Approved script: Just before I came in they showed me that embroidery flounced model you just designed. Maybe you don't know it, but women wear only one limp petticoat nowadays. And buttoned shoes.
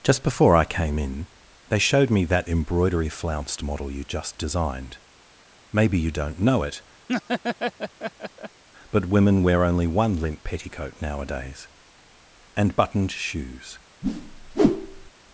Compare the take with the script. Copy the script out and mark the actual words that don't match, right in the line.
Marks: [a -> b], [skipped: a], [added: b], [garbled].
Just before I came in they showed me that embroidery flounced model you just designed. Maybe you don't know it, but women wear only one limp petticoat nowadays. And buttoned shoes.